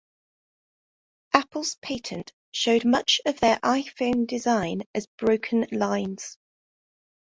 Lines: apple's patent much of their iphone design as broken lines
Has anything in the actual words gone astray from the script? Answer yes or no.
yes